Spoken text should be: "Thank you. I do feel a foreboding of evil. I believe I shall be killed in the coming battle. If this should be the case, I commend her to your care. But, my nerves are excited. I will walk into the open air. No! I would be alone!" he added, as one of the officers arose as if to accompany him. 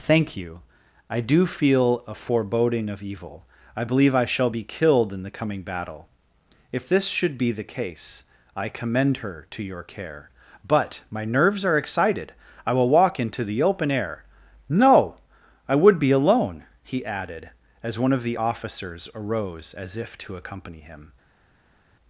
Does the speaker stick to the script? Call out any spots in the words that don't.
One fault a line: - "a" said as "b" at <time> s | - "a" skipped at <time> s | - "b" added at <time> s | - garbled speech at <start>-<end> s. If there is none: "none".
none